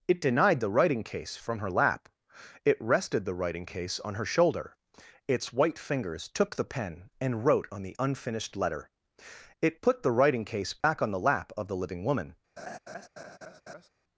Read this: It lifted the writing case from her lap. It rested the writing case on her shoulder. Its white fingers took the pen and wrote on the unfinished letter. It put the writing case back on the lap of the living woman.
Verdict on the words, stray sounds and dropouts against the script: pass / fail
fail